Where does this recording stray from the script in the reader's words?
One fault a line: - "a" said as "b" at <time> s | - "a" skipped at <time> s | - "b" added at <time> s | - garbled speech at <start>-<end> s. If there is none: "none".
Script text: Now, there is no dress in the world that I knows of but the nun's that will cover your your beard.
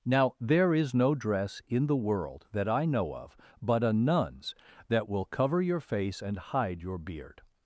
- "knows" said as "know" at 2.9 s
- "the" said as "a" at 3.8 s
- "face and hide" added at 5.8 s